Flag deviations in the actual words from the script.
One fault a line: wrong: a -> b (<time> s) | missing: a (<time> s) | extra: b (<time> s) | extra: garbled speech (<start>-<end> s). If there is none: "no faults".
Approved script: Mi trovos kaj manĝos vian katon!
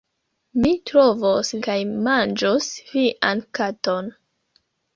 no faults